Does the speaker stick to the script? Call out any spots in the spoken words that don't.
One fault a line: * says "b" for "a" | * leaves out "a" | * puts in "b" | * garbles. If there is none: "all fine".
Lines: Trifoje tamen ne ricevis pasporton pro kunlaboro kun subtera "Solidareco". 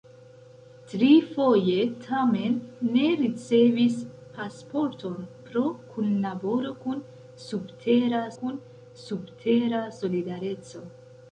* puts in "kun subtera"